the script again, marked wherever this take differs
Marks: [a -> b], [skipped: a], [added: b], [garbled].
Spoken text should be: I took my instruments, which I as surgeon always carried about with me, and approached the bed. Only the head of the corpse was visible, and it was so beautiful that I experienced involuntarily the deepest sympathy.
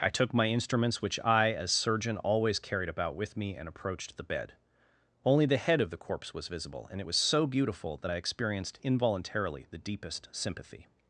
I took my instruments, which I as surgeon always carried about with me, and approached the bed. Only the head of the corpse was visible, and it was so beautiful that I experienced involuntarily the deepest sympathy.